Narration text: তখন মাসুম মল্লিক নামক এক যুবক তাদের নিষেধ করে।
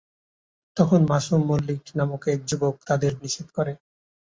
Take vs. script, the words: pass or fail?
pass